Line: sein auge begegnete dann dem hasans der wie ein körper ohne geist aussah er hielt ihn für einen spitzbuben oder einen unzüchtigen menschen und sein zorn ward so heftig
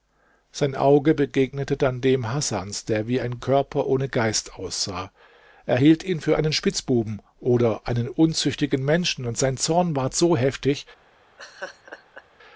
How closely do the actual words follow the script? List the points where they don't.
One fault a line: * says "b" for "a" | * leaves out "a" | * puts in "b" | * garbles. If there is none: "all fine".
all fine